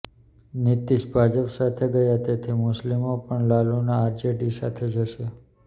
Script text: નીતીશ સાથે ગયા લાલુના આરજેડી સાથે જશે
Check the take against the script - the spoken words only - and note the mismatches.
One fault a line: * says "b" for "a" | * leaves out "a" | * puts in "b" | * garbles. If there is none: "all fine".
* puts in "ભાજપ"
* puts in "તેથી મુસ્લિમો પણ"